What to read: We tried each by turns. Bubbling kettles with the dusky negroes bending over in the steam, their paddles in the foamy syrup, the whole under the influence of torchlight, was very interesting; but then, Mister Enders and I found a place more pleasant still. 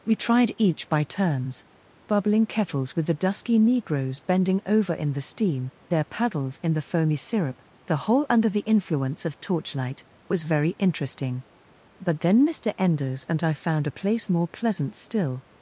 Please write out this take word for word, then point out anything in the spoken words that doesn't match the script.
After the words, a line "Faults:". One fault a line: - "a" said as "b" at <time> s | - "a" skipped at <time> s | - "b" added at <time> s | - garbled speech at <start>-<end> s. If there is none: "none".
We tried each by turns. Bubbling kettles with the dusky negroes bending over in the steam, their paddles in the foamy syrup, the whole under the influence of torchlight, was very interesting; but then, Mister Enders and I found a place more pleasant still.
Faults:
none